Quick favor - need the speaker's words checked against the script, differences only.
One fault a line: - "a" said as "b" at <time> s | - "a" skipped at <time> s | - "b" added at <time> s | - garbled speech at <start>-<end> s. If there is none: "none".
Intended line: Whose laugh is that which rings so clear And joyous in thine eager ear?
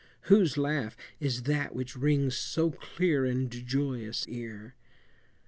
- "in thine eager" skipped at 4.2 s